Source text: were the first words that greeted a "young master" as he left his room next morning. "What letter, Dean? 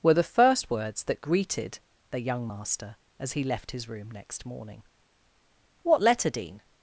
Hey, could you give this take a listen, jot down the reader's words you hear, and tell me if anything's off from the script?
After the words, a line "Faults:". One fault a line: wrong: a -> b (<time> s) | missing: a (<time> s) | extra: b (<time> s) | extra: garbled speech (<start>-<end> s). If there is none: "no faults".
were the first words that greeted the "young master" as he left his room next morning. "What letter, Dean?
Faults:
wrong: a -> the (2.1 s)